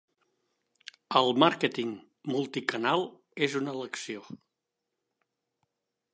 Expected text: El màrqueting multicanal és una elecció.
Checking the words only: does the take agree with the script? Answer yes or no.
yes